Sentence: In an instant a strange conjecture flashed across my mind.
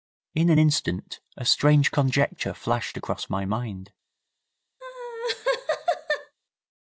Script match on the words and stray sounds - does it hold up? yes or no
no